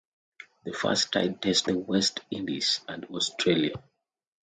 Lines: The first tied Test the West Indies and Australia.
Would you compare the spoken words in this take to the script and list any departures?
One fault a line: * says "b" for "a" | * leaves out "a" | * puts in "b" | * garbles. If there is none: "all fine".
all fine